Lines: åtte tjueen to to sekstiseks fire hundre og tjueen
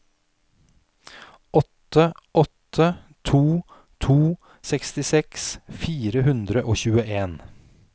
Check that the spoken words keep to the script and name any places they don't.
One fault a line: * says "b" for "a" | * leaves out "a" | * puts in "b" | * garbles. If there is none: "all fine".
* says "åtte" for "tjueen"